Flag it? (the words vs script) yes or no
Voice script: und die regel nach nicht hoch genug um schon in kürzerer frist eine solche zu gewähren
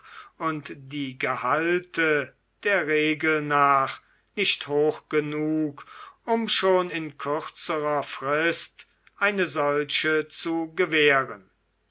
yes